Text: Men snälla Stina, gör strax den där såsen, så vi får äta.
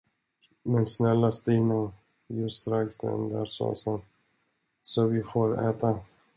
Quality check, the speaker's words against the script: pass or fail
pass